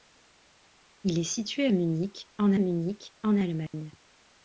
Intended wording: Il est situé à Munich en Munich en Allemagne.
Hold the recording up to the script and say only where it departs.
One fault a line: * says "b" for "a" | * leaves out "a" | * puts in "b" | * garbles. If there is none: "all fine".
all fine